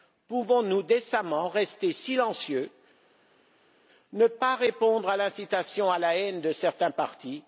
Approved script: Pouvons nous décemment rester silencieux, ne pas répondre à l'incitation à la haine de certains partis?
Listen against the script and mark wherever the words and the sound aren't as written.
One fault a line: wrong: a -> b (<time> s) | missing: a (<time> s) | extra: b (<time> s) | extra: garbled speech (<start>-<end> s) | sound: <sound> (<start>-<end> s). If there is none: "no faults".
no faults